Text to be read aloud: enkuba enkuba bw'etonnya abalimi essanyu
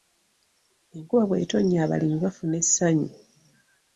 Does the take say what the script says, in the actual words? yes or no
no